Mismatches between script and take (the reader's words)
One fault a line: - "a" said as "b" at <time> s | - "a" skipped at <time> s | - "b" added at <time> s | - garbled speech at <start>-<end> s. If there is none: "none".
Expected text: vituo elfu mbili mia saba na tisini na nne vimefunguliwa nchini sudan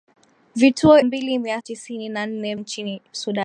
- "elfu" skipped at 1.0 s
- "saba na" skipped at 1.6 s
- "vimefunguliwa" skipped at 2.6 s